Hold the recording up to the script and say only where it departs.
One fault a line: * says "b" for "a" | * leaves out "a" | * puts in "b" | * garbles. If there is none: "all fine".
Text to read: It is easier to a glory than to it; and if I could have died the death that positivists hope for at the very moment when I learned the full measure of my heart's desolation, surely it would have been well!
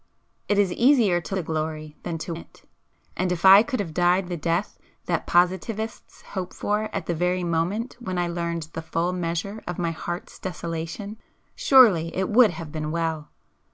all fine